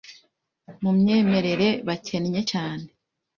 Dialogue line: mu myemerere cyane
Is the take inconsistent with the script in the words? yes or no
yes